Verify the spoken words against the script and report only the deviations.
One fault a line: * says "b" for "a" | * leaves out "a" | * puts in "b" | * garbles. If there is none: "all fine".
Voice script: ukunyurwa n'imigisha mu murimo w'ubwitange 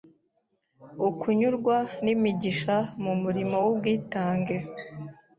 all fine